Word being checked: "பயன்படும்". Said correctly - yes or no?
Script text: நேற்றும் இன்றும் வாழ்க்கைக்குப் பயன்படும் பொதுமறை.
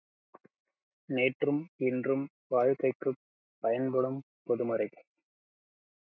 yes